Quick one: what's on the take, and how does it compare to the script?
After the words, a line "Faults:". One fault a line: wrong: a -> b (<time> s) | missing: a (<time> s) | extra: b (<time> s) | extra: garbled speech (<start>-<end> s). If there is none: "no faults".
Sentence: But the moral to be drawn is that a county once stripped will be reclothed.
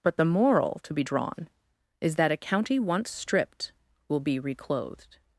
But the moral to be drawn is that a county once stripped will be reclothed.
Faults:
no faults